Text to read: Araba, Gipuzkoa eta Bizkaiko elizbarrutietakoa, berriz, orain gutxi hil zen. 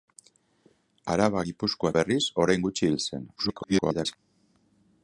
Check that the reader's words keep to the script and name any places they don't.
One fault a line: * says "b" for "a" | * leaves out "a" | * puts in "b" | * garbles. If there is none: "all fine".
* leaves out "eta Bizkaiko elizbarrutietakoa"
* garbles